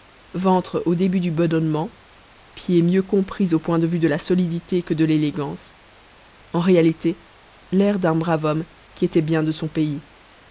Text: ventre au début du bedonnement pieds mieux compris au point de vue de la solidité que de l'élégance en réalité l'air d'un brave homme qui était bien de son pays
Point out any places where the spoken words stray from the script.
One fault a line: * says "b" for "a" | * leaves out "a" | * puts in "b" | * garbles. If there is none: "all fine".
all fine